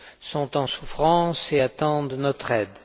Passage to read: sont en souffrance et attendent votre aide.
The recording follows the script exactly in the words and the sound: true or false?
false